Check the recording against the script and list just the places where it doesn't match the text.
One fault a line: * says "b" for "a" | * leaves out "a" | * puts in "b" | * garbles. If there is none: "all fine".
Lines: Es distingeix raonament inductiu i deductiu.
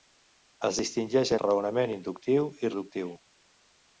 all fine